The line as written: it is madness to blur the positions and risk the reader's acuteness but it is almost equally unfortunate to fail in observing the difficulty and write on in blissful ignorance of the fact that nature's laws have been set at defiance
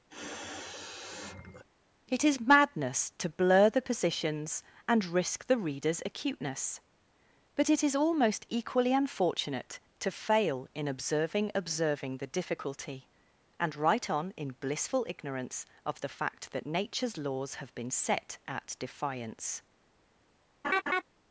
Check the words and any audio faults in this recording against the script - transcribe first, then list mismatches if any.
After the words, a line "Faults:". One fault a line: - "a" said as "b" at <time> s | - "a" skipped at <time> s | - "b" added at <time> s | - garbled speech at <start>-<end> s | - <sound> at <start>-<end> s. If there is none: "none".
it is madness to blur the positions and risk the reader's acuteness but it is almost equally unfortunate to fail in observing observing the difficulty and write on in blissful ignorance of the fact that nature's laws have been set at defiance
Faults:
- sniff at 0.1-1.6 s
- "observing" added at 11.5 s
- laugh at 20.6-21.0 s